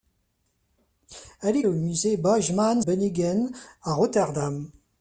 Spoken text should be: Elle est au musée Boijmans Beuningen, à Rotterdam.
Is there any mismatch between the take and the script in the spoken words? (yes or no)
no